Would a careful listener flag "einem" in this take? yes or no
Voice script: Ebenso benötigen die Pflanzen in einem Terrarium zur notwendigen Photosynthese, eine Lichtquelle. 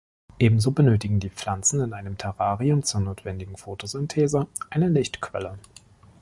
no